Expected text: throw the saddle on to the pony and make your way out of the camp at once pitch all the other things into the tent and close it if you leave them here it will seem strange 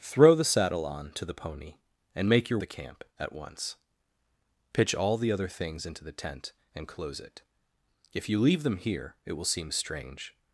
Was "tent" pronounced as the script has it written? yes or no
yes